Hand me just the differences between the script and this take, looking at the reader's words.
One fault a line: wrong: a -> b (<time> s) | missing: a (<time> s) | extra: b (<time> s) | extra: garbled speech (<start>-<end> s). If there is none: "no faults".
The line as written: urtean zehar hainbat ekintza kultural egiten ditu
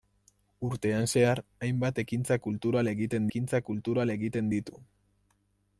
extra: ekintza kultural egiten (3.3 s)